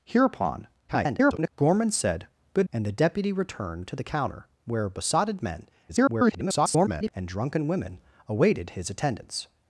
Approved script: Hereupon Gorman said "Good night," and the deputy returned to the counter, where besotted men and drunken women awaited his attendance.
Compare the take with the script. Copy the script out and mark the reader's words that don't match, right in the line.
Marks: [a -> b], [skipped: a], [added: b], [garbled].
Hereupon [garbled] Gorman said "Good [skipped: night,"] and the deputy returned to the counter, where besotted men [garbled] and drunken women awaited his attendance.